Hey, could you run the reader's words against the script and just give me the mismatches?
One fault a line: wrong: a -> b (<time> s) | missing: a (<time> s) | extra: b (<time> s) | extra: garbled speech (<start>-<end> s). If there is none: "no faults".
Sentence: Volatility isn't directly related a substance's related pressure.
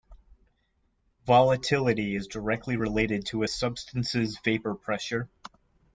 wrong: isn't -> is (2.1 s)
extra: to (3.3 s)
wrong: related -> vapor (4.4 s)